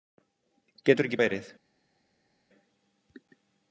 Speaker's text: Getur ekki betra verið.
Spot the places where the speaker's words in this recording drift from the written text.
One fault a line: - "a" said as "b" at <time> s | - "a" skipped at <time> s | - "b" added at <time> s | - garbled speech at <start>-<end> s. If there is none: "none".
- "betra" skipped at 1.2 s